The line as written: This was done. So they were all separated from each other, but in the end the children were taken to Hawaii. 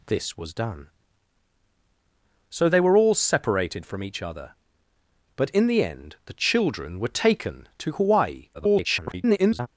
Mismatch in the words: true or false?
true